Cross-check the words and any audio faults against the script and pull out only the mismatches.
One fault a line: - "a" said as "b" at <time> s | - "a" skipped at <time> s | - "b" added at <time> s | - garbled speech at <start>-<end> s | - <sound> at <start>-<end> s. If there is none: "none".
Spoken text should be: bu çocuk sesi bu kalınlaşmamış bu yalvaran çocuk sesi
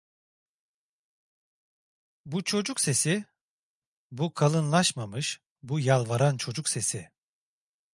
none